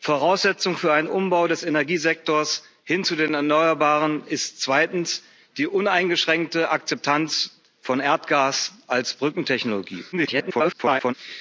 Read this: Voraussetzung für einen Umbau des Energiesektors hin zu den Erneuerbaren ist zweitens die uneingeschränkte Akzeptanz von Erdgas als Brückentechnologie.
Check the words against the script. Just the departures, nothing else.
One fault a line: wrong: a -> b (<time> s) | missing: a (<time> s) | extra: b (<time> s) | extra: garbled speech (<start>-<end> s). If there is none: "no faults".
extra: garbled speech (10.1-11.1 s)